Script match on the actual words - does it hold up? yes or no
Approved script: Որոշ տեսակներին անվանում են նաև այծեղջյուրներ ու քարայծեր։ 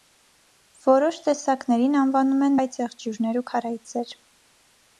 no